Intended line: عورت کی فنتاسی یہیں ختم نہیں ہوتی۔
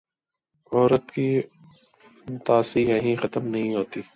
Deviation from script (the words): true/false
false